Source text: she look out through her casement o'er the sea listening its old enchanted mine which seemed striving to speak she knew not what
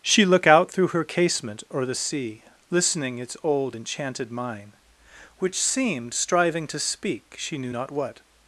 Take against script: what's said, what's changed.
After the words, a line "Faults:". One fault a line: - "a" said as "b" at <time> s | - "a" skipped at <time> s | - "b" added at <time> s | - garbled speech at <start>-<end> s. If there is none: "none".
she look out through her casement o'er the sea listening its old enchanted mine which seemed striving to speak she knew not what
Faults:
none